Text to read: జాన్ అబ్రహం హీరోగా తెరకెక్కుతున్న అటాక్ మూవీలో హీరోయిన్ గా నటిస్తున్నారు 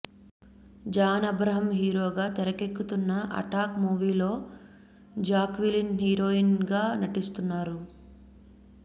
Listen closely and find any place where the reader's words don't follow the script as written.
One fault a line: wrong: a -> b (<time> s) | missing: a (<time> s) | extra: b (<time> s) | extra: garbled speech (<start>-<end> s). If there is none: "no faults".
extra: జాక్విలిన్ (5.2 s)